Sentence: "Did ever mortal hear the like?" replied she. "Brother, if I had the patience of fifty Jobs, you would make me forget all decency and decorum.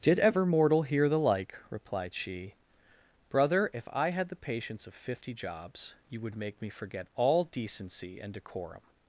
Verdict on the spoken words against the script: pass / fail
pass